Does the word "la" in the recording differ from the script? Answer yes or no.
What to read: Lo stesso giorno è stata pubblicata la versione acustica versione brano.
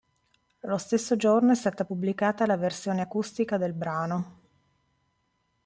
no